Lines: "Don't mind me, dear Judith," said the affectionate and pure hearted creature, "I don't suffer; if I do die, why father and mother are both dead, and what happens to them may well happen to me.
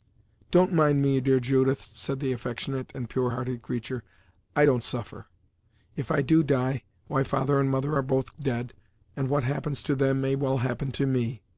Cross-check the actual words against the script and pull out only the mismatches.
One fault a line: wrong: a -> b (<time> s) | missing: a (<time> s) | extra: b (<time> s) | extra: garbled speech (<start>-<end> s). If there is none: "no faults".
no faults